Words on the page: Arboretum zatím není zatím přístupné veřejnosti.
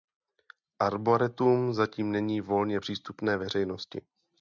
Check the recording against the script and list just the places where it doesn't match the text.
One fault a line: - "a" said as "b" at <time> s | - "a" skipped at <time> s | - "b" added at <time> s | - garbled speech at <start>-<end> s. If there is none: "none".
- "zatím" said as "volně" at 2.4 s